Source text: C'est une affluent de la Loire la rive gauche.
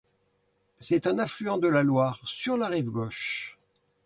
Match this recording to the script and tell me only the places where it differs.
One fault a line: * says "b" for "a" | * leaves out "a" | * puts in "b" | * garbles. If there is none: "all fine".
* says "un" for "une"
* puts in "sur"